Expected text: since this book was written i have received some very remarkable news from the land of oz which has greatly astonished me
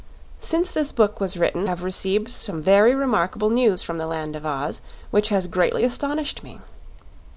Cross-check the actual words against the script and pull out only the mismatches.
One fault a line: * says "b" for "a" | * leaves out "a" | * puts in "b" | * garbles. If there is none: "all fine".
* leaves out "i"